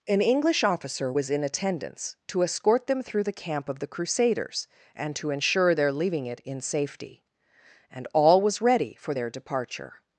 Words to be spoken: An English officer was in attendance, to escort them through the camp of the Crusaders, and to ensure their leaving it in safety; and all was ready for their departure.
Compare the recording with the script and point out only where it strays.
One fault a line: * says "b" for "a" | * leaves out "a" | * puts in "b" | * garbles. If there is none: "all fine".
all fine